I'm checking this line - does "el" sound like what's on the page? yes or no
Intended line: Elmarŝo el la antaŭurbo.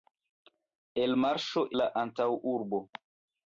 no